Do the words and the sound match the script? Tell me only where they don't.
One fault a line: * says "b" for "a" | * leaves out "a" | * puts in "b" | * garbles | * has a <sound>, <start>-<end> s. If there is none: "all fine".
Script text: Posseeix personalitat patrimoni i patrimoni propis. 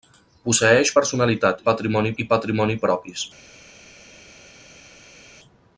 all fine